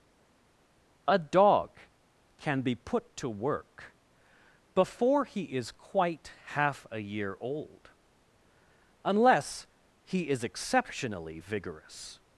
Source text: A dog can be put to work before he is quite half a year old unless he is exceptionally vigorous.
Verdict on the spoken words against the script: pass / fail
pass